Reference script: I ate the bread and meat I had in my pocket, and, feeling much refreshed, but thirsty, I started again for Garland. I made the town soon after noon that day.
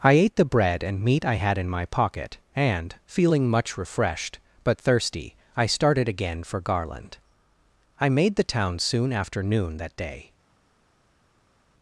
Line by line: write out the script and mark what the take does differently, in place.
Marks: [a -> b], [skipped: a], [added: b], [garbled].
I ate the bread and meat I had in my pocket, and, feeling much refreshed, but thirsty, I started again for Garland. I made the town soon after noon that day.